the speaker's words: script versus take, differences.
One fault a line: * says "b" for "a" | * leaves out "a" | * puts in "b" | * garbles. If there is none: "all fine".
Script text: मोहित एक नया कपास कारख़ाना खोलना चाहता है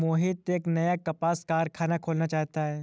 all fine